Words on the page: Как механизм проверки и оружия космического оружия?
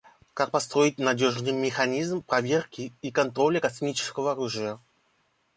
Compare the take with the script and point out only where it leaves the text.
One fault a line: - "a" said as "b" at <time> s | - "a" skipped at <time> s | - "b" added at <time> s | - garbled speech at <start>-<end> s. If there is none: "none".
- "построить надежный" added at 0.5 s
- "оружия" said as "контроля" at 3.1 s